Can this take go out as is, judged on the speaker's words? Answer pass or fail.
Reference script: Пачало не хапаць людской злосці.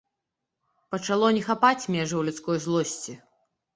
fail